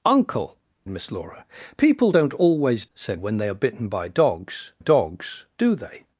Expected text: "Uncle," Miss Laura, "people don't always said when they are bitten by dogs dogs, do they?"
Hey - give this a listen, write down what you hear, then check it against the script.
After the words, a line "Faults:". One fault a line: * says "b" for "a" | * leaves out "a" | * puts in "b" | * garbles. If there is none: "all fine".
"Uncle," Miss Laura, "people don't always said when they are bitten by dogs dogs, do they?"
Faults:
all fine